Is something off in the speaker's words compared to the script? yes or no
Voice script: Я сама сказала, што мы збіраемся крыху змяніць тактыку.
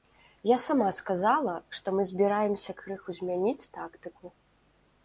no